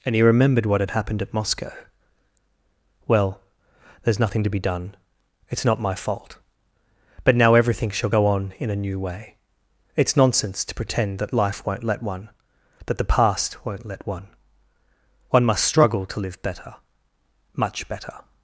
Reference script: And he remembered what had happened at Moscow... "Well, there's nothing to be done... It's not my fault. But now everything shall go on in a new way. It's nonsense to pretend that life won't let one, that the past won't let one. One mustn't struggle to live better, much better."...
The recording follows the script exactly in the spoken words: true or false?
false